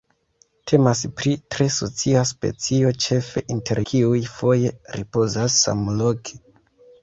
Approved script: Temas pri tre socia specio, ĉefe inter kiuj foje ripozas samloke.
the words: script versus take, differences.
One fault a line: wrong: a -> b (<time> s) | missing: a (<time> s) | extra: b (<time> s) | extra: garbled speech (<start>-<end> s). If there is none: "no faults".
no faults